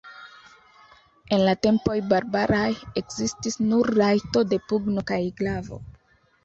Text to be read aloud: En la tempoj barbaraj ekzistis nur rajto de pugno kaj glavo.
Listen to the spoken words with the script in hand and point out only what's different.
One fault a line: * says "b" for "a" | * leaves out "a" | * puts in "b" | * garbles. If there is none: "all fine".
all fine